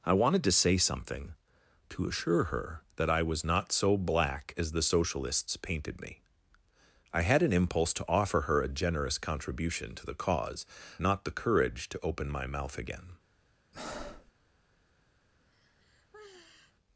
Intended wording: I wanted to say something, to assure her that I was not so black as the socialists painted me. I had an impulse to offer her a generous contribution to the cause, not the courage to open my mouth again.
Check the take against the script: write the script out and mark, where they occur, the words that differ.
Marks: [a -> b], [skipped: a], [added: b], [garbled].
I wanted to say something, to assure her that I was not so black as the socialists painted me. I had an impulse to offer her a generous contribution to the cause, not the courage to open my mouth again.